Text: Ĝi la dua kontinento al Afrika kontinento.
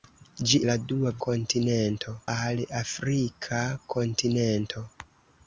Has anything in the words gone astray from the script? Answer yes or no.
no